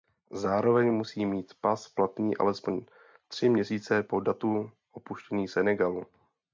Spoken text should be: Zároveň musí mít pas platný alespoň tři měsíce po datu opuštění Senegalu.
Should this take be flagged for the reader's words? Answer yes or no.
no